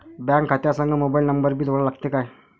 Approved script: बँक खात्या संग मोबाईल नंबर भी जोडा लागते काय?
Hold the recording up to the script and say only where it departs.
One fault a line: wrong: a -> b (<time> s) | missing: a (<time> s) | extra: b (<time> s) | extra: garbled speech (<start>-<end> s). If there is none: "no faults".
no faults